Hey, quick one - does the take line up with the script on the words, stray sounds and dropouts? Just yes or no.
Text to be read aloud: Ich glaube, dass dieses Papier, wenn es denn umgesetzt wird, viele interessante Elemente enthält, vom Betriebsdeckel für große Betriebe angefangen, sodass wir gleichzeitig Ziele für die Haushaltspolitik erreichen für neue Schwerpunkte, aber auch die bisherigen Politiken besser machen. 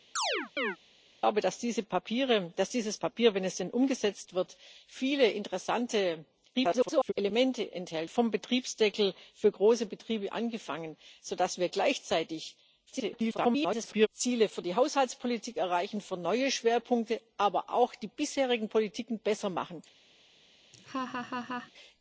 no